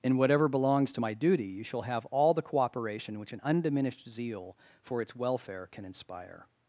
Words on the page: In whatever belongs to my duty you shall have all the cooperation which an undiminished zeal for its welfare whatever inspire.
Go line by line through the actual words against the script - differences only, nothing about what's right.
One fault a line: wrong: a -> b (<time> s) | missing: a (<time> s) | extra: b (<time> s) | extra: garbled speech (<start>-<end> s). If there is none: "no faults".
wrong: whatever -> can (5.7 s)